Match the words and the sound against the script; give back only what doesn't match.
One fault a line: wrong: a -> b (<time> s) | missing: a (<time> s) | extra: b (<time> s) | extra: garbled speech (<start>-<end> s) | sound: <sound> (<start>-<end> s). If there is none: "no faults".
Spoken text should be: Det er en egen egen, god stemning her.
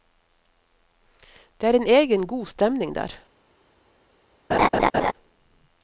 missing: egen (2.3 s)
wrong: her -> der (3.0 s)
sound: laugh (4.5-5.1 s)